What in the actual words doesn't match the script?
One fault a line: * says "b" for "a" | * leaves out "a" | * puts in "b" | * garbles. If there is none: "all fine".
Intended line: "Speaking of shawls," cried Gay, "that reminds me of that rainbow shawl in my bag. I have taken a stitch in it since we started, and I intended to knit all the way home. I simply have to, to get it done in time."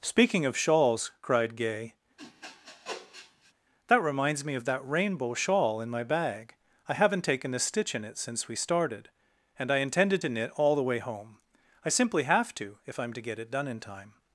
* says "haven't" for "have"
* puts in "if I'm"